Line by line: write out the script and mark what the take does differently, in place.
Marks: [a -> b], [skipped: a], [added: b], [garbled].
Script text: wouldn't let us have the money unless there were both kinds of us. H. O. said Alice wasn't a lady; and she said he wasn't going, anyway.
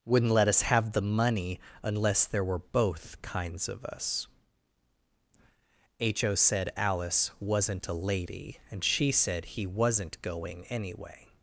wouldn't let us have the money unless there were both kinds of us. H. O. said Alice wasn't a lady; and she said he wasn't going, anyway.